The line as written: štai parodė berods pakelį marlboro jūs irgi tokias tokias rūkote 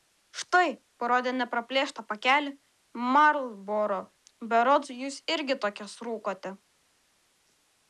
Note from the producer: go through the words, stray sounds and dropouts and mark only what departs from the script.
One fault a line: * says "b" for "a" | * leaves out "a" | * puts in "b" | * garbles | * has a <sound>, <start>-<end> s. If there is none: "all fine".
* says "nepraplėštą" for "berods"
* puts in "berods"
* leaves out "tokias"